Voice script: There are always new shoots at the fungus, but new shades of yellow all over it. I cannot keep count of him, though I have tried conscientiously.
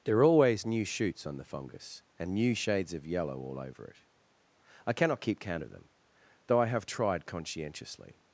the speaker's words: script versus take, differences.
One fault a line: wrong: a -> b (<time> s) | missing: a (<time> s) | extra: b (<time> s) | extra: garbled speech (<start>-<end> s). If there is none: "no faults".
wrong: at -> on (1.3 s)
wrong: but -> and (2.2 s)
wrong: him -> them (5.7 s)